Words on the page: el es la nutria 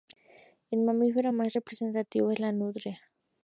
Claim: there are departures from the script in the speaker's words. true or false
true